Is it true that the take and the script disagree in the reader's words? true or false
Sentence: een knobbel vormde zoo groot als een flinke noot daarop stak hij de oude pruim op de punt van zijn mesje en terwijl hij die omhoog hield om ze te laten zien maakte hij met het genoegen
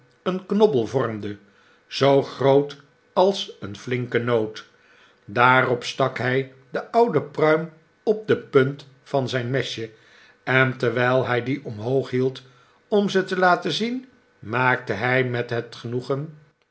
false